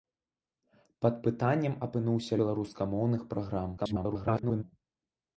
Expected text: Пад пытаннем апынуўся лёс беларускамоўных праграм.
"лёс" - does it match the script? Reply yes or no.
no